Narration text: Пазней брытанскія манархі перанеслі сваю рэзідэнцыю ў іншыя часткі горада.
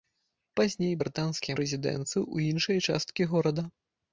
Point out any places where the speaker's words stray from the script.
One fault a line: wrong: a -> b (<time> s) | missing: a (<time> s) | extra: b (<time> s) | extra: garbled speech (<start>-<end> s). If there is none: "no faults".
missing: манархі перанеслі сваю (1.6 s)